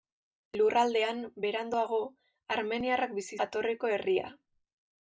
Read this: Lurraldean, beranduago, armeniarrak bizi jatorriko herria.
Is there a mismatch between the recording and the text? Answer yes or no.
no